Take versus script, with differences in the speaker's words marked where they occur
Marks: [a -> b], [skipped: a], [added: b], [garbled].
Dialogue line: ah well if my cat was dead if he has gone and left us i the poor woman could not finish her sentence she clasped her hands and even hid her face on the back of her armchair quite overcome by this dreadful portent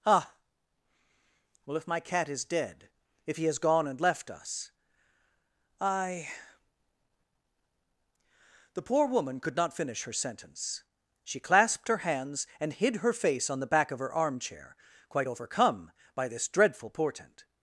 ah well if my cat [was -> is] dead if he has gone and left us i the poor woman could not finish her sentence she clasped her hands and [skipped: even] hid her face on the back of her armchair quite overcome by this dreadful portent